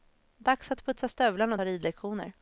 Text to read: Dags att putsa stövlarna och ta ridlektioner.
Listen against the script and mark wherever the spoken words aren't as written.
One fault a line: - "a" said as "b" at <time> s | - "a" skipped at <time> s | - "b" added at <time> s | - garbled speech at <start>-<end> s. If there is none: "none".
none